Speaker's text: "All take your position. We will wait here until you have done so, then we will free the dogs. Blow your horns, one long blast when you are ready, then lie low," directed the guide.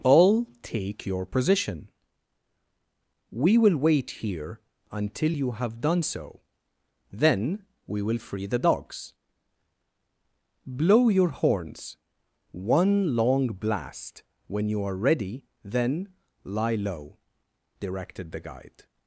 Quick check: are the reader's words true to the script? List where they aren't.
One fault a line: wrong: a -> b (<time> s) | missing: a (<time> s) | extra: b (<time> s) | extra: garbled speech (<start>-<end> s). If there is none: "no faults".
no faults